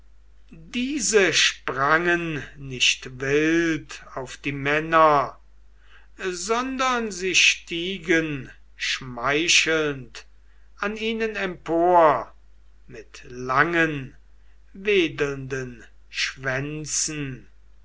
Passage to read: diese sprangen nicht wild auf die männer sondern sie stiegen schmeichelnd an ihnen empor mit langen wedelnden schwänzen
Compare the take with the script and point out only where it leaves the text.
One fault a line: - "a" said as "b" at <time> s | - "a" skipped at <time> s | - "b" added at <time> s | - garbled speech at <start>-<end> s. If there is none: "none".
none